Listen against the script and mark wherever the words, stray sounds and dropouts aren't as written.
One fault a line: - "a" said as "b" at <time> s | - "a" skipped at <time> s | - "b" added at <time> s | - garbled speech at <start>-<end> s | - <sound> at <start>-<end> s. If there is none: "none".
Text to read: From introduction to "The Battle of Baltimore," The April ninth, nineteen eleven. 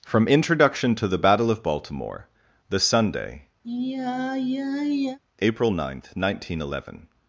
- "Sunday" added at 2.8 s
- sigh at 3.6-5.2 s